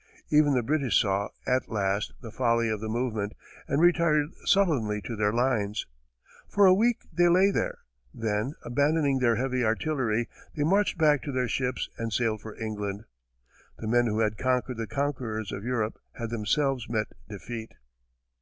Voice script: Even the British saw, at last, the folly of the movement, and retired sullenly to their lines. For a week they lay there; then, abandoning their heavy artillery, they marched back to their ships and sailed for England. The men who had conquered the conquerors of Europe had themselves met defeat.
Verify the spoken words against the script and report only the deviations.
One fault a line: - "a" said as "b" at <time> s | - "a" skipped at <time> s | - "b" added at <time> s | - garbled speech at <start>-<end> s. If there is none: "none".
none